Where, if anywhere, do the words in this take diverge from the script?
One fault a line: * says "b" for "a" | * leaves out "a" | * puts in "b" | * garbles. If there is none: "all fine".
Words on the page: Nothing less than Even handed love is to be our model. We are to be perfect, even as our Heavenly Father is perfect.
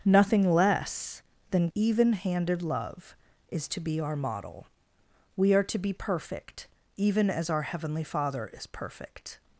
all fine